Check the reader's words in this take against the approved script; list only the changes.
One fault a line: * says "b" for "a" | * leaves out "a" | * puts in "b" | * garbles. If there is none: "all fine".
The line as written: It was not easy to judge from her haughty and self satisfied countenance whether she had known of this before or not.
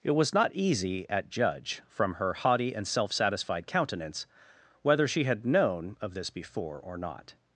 * says "at" for "to"